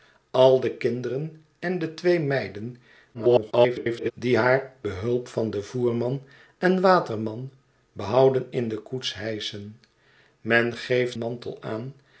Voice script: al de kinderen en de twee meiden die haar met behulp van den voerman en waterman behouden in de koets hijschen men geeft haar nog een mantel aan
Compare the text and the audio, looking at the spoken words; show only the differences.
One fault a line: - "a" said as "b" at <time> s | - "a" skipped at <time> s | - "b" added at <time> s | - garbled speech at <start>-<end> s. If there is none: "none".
- garbled speech at 3.1-4.1 s
- "met" skipped at 4.7 s
- "haar nog een" skipped at 11.2 s